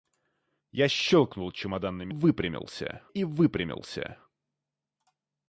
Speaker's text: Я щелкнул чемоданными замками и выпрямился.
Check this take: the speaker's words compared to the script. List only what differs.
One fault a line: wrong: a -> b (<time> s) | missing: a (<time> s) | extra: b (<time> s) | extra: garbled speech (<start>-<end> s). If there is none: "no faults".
wrong: замками -> выпрямился (2.1 s)